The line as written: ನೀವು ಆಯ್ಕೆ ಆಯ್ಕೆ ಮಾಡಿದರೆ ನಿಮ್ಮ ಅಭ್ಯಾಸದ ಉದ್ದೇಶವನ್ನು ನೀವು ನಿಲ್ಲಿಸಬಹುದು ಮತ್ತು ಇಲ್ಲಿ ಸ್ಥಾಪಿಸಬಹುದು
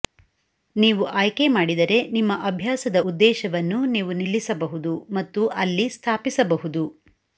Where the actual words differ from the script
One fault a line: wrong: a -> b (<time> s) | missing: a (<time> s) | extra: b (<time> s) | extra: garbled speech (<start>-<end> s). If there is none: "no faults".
missing: ಆಯ್ಕೆ (1.5 s)
wrong: ಇಲ್ಲಿ -> ಅಲ್ಲಿ (5.6 s)